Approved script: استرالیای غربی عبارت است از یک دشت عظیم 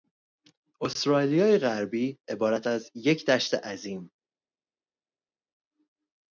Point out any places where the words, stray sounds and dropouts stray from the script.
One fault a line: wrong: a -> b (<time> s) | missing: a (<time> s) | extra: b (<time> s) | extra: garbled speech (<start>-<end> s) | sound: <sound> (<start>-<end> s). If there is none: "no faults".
missing: است (2.7 s)